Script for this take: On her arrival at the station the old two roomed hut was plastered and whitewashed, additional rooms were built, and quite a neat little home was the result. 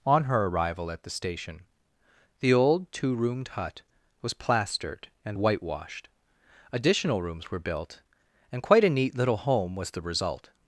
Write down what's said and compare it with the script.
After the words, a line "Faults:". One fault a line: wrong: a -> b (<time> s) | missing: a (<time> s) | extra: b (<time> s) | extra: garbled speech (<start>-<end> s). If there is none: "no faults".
On her arrival at the station the old two roomed hut was plastered and whitewashed, additional rooms were built, and quite a neat little home was the result.
Faults:
no faults